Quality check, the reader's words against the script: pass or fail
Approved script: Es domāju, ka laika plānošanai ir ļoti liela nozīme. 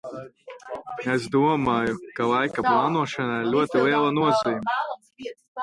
pass